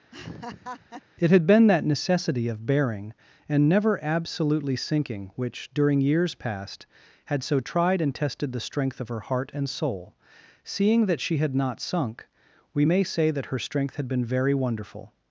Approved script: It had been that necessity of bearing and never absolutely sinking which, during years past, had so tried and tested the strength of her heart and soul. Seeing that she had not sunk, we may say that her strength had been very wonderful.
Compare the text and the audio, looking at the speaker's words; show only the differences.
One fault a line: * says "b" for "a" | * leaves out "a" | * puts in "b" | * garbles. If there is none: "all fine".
all fine